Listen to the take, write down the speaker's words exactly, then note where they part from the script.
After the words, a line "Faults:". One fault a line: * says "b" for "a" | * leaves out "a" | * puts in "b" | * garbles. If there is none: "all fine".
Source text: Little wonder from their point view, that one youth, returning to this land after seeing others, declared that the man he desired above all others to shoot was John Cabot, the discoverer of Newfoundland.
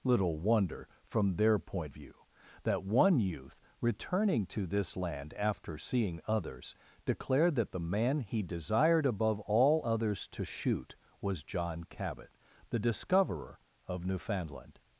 Little wonder from their point view, that one youth, returning to this land after seeing others, declared that the man he desired above all others to shoot was John Cabot, the discoverer of Newfoundland.
Faults:
all fine